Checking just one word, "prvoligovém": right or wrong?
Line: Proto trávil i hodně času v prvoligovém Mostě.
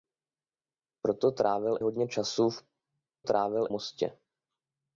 wrong